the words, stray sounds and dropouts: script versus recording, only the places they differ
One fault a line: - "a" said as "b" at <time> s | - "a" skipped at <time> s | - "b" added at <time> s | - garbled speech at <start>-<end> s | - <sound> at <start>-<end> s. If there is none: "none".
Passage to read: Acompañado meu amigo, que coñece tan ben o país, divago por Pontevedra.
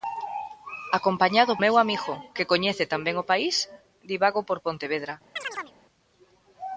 - chirp at 5.4-5.7 s